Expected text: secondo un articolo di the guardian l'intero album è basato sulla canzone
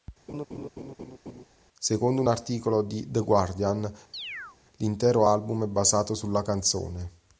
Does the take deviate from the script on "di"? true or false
false